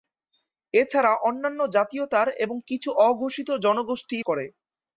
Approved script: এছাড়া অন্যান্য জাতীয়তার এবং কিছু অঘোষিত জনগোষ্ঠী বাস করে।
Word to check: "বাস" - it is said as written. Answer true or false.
false